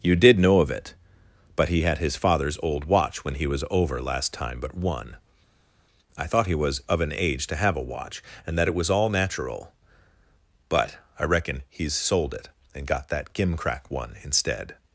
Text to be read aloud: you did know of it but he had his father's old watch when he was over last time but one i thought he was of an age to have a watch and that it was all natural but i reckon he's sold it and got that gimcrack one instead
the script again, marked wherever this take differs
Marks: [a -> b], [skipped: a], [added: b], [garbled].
you did know of it but he had his father's old watch when he was over last time but one i thought he was of an age to have a watch and that it was all natural but i reckon he's sold it and got that gimcrack one instead